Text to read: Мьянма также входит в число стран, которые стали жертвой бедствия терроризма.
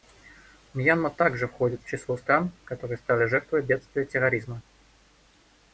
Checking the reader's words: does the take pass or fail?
pass